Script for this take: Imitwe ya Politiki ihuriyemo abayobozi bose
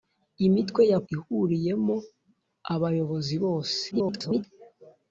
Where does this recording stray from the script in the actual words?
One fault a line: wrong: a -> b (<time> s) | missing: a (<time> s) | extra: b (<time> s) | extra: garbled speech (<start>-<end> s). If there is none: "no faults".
missing: Politiki (1.0 s)
extra: garbled speech (3.9-4.4 s)